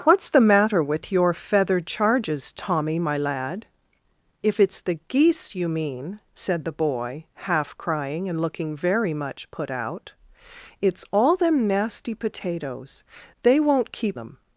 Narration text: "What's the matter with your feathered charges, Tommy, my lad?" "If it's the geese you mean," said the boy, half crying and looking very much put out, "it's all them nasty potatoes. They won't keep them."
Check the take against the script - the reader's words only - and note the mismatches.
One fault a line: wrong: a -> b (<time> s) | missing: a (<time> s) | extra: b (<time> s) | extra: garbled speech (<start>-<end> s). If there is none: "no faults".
no faults